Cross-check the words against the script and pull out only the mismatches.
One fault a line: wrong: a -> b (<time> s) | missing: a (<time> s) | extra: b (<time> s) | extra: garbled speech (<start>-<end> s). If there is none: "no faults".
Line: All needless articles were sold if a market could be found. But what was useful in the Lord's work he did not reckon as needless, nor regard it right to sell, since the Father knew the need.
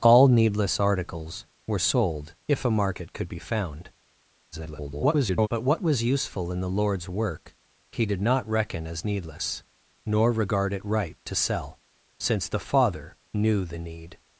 extra: garbled speech (4.5-5.5 s)